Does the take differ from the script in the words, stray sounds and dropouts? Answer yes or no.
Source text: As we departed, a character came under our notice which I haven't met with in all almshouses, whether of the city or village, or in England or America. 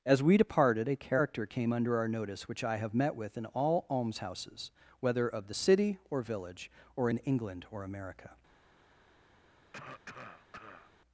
yes